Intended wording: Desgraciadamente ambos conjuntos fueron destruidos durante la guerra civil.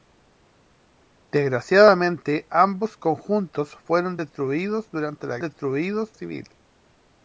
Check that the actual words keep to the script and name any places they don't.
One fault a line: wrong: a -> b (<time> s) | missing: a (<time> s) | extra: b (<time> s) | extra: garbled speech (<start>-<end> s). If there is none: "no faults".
wrong: guerra -> destruidos (5.4 s)